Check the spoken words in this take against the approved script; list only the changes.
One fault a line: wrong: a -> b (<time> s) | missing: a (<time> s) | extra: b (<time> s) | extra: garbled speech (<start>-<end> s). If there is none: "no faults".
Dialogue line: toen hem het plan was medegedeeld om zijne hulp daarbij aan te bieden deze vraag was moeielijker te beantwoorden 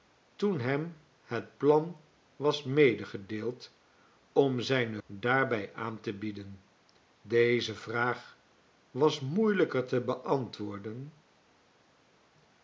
missing: hulp (5.0 s)